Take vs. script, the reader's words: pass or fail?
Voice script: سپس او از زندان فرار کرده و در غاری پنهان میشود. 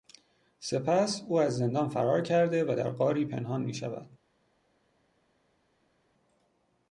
pass